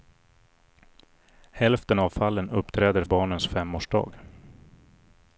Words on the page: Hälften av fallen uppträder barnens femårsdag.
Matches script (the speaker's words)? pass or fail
pass